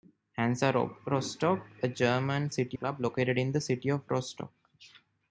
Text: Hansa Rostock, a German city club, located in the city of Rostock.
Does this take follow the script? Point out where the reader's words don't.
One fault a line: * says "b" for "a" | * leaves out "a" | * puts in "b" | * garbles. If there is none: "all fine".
all fine